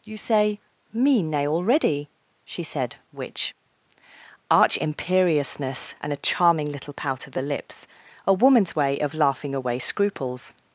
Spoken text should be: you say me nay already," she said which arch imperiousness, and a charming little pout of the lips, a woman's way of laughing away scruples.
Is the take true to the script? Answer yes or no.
yes